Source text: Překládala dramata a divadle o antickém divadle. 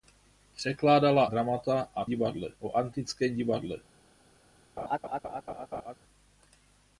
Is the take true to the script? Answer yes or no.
yes